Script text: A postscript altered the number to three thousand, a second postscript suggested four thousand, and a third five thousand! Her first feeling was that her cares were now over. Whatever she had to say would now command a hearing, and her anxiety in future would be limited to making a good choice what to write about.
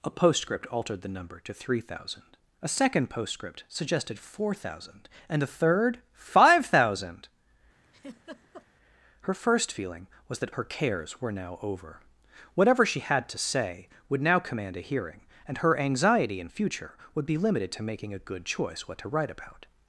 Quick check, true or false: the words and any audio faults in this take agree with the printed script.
false